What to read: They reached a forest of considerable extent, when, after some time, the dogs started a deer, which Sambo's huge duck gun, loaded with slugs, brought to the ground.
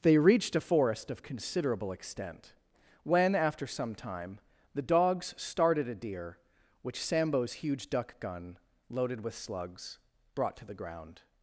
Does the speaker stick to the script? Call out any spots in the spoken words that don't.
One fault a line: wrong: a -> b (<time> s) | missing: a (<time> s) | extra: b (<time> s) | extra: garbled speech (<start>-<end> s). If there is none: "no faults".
no faults